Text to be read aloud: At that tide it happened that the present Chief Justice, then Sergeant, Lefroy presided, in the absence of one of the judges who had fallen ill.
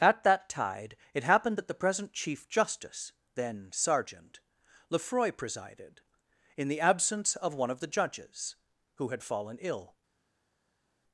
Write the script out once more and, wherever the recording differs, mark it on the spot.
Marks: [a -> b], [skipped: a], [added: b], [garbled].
At that tide it happened that the present Chief Justice, then Sergeant, Lefroy presided, in the absence of one of the judges who had fallen ill.